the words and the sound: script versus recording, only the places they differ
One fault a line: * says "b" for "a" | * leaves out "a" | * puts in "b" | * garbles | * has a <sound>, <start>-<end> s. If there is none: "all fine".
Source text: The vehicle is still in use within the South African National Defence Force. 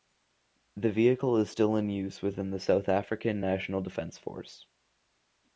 all fine